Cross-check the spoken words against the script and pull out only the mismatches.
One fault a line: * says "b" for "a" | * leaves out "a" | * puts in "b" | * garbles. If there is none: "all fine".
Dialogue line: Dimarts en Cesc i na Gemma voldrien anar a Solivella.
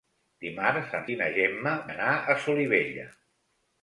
* leaves out "Cesc"
* leaves out "voldrien"